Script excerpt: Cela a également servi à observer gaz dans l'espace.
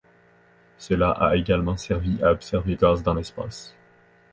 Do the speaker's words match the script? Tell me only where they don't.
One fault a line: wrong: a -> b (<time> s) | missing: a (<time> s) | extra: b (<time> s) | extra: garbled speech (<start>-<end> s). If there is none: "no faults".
no faults